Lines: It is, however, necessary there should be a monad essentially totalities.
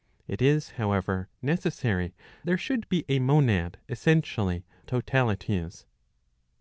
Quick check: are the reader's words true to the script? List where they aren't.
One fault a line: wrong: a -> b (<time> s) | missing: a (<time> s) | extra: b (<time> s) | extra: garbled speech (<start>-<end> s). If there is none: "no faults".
no faults